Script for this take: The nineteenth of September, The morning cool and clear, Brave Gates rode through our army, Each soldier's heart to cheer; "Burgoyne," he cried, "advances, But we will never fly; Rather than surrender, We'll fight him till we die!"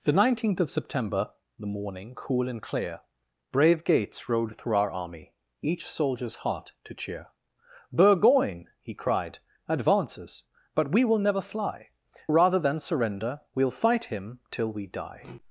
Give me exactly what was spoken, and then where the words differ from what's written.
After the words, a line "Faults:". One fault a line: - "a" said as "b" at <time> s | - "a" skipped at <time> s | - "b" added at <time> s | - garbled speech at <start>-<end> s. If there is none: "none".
The nineteenth of September, The morning cool and clear, Brave Gates rode through our army, Each soldier's heart to cheer; "Burgoyne," he cried, "advances, But we will never fly; Rather than surrender, We'll fight him till we die!"
Faults:
none